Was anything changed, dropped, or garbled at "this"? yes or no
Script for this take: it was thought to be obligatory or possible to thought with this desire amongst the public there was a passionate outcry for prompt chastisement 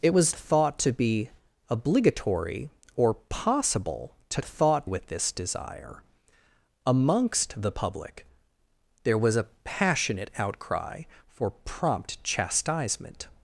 no